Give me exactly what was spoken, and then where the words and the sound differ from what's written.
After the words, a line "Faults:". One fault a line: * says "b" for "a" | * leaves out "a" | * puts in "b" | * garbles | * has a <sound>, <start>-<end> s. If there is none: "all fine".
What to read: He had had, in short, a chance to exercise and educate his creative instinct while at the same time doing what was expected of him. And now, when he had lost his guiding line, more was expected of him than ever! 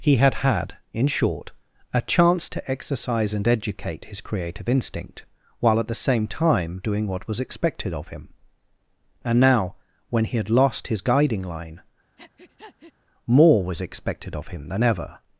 He had had, in short, a chance to exercise and educate his creative instinct while at the same time doing what was expected of him. And now, when he had lost his guiding line, more was expected of him than ever!
Faults:
* has a breath, 12.2-12.9 s